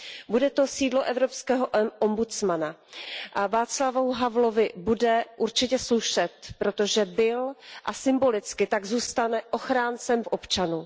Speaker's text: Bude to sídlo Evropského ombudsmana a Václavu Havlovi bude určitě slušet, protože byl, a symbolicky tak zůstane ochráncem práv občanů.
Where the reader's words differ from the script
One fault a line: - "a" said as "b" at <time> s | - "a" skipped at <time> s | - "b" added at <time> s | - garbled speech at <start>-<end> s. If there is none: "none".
- "práv" skipped at 10.2 s